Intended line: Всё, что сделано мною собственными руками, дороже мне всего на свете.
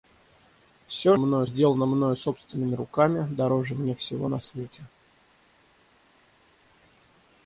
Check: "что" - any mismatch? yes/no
yes